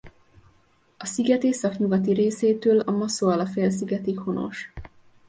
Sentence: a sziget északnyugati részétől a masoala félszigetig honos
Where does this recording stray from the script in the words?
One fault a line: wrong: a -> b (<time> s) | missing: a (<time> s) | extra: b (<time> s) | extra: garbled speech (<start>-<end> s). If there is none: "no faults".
no faults